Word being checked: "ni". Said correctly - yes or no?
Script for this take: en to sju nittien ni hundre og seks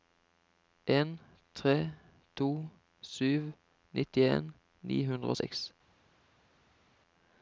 yes